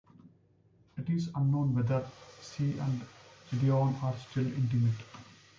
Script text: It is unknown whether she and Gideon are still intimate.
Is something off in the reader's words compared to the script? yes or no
no